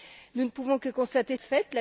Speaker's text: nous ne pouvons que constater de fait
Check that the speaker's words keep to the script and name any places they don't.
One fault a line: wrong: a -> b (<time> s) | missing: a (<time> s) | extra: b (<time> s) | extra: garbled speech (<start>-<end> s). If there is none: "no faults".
no faults